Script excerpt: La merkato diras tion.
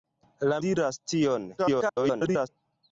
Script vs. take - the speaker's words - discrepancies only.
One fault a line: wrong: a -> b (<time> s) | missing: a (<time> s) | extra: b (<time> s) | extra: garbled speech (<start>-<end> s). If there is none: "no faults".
missing: merkato (0.6 s)
extra: garbled speech (1.6-2.5 s)